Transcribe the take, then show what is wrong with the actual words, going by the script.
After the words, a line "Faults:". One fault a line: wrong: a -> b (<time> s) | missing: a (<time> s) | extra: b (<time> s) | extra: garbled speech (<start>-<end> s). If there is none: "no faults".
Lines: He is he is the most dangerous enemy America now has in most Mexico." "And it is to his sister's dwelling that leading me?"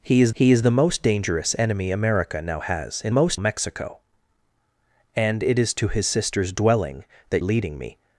He is he is the most dangerous enemy America now has in most Mexico." "And it is to his sister's dwelling that leading me?"
Faults:
no faults